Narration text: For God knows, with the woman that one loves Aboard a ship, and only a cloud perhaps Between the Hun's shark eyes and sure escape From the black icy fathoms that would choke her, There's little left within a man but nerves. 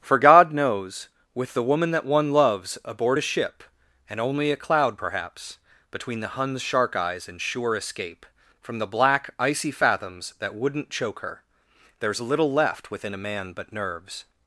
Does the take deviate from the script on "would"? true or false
true